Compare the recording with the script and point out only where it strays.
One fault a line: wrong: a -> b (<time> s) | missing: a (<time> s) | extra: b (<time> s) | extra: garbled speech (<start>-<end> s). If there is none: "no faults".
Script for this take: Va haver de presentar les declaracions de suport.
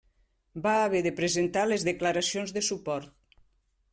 no faults